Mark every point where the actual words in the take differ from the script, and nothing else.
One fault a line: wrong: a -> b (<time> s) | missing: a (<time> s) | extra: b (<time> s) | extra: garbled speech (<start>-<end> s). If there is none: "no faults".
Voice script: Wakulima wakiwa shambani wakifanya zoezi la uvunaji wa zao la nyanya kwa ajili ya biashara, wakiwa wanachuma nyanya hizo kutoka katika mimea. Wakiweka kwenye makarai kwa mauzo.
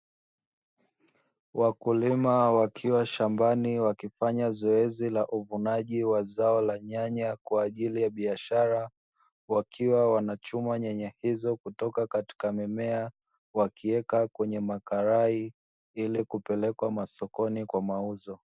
extra: ili kupelekwa masokoni (15.9 s)